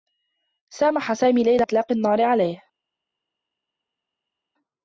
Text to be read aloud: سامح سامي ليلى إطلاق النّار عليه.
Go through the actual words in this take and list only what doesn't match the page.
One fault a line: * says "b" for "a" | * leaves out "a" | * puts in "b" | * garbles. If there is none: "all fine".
all fine